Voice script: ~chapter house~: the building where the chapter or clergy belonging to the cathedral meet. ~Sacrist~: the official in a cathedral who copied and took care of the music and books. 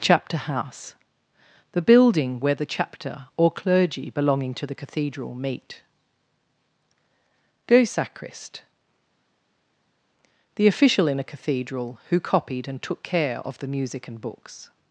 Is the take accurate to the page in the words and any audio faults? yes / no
no